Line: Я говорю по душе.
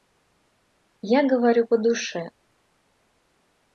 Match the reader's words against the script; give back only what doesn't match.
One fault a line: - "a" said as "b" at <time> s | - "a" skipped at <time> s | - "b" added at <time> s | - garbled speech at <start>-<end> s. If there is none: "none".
none